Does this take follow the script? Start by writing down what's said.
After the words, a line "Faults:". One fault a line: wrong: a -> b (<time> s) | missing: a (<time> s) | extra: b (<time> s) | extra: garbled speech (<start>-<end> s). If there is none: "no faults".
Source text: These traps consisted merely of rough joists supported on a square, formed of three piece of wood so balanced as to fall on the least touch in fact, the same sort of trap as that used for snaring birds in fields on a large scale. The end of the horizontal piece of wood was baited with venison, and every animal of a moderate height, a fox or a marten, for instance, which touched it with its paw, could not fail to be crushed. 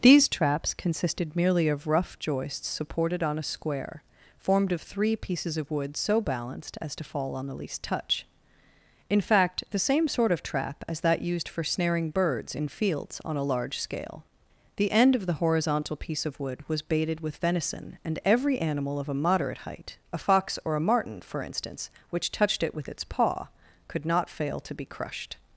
These traps consisted merely of rough joists supported on a square, formed of three pieces of wood so balanced as to fall on the least touch in fact, the same sort of trap as that used for snaring birds in fields on a large scale. The end of the horizontal piece of wood was baited with venison, and every animal of a moderate height, a fox or a marten, for instance, which touched it with its paw, could not fail to be crushed.
Faults:
wrong: piece -> pieces (5.1 s)